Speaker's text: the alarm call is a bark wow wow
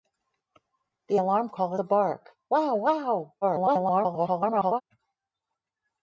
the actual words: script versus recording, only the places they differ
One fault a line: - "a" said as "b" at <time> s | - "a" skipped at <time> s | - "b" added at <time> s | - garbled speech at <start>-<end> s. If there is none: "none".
- "is" skipped at 1.7 s
- garbled speech at 3.4-4.8 s